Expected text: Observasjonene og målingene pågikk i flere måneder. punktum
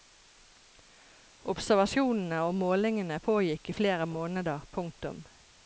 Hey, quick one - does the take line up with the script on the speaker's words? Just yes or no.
yes